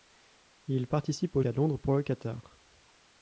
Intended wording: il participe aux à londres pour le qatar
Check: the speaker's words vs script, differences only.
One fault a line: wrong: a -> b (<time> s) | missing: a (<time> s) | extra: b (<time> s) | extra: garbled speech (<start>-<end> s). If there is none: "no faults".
no faults